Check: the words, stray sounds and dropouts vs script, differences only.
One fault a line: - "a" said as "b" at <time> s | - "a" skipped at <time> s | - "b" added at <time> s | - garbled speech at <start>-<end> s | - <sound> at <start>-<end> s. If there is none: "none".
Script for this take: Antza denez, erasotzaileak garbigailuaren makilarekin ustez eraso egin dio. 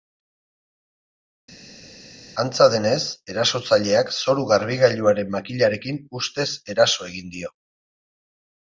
- "zoru" added at 4.2 s